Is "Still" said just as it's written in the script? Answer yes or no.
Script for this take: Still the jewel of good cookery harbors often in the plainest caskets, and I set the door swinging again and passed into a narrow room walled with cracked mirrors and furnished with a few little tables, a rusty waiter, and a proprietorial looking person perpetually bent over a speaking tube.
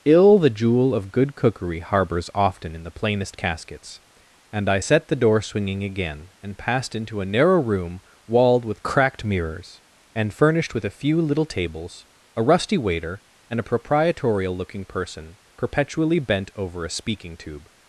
no